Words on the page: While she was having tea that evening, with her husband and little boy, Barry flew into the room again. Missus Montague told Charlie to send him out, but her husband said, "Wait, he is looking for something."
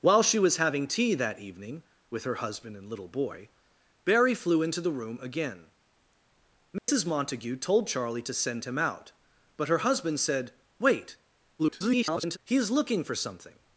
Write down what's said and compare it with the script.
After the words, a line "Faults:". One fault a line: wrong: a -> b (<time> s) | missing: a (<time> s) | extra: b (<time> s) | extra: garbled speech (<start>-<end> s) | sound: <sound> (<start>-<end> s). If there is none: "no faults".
While she was having tea that evening, with her husband and little boy, Barry flew into the room again. Missus Montague told Charlie to send him out, but her husband said, "Wait, [garbled] he is looking for something."
Faults:
sound: dropout (6.8-6.9 s)
extra: garbled speech (11.6-12.4 s)